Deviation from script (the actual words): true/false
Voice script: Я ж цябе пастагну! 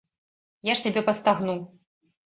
false